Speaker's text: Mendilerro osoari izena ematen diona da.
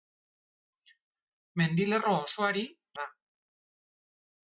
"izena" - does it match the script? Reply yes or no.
no